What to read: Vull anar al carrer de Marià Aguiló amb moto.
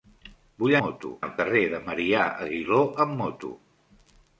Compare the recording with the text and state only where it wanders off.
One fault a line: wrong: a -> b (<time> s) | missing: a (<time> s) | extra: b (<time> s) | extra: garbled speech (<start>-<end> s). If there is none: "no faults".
wrong: anar -> moto (0.8 s)